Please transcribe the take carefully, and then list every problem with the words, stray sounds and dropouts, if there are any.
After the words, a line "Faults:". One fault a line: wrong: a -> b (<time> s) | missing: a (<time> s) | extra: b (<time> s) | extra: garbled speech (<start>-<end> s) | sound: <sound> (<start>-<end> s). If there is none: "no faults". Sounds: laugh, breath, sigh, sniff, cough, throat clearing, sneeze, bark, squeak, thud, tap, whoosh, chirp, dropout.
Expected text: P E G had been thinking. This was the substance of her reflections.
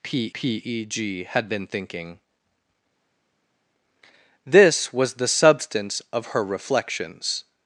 P p E G had been thinking. This was the substance of her reflections.
Faults:
extra: p (0.3 s)